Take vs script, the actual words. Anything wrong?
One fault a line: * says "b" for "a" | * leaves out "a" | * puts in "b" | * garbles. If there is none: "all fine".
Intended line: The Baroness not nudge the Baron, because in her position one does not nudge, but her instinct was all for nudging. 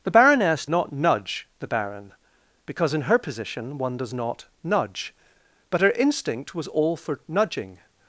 all fine